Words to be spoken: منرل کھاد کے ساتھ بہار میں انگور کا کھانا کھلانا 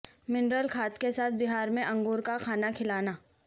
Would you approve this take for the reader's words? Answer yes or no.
yes